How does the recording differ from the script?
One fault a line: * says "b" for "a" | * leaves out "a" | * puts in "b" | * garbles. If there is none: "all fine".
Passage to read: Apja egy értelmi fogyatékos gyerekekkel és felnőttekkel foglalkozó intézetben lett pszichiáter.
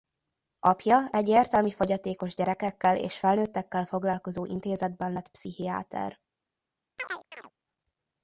all fine